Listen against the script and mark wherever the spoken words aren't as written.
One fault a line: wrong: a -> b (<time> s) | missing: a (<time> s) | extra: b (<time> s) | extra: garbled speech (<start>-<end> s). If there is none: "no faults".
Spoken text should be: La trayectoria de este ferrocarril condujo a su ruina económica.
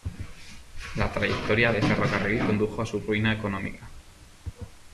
missing: este (1.8 s)